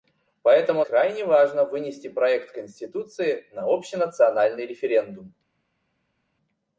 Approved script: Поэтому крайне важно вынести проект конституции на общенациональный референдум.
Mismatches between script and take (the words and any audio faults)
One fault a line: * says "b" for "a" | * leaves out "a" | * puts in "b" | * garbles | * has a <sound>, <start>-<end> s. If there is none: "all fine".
all fine